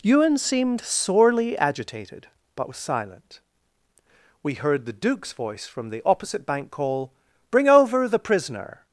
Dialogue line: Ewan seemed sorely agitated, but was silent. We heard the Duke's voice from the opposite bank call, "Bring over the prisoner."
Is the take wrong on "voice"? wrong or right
right